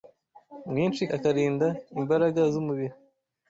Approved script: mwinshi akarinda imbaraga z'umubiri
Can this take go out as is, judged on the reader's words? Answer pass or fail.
pass